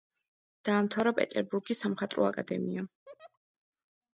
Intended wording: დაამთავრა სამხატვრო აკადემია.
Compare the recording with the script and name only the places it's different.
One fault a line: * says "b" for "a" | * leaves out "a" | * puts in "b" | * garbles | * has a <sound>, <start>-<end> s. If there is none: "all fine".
* puts in "პეტერბურგის"
* has a laugh, 3.1-3.4 s